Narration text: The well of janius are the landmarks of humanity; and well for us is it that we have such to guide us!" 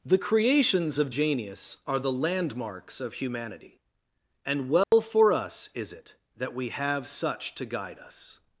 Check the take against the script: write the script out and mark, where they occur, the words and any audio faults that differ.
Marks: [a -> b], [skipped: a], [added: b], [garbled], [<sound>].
The [well -> creations] of janius are the landmarks of humanity; and well [dropout] for us is it that we have such to guide us!"